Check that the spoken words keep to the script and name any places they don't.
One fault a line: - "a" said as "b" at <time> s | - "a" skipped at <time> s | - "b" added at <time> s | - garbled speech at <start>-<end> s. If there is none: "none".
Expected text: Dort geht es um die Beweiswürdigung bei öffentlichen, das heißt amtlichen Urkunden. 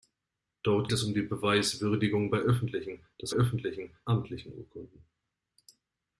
- "geht" skipped at 0.9 s
- "heißt" said as "öffentlichen" at 3.3 s